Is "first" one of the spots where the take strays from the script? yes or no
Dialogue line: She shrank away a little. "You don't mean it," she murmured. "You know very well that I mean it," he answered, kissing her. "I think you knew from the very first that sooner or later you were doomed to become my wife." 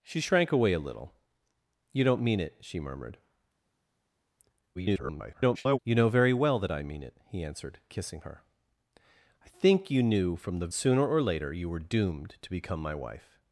yes